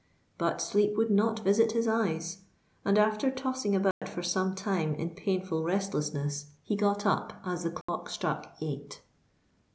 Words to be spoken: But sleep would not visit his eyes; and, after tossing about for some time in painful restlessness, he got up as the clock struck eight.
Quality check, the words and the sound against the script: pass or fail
fail